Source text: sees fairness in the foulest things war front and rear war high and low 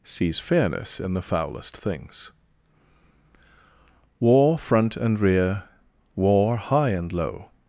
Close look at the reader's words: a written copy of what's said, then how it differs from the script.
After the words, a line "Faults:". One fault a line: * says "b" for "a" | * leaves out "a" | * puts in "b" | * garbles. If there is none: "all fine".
sees fairness in the foulest things war front and rear war high and low
Faults:
all fine